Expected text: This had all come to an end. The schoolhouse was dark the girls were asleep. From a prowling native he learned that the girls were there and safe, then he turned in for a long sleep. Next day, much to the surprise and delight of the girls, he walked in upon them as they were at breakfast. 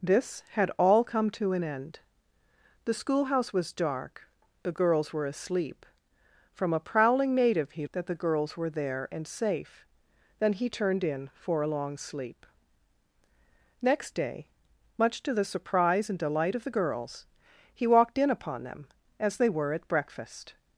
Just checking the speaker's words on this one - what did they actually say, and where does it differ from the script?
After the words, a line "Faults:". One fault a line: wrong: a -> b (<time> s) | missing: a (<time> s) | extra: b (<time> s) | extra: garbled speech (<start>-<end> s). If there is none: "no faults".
This had all come to an end. The schoolhouse was dark the girls were asleep. From a prowling native he that the girls were there and safe, then he turned in for a long sleep. Next day, much to the surprise and delight of the girls, he walked in upon them as they were at breakfast.
Faults:
missing: learned (7.9 s)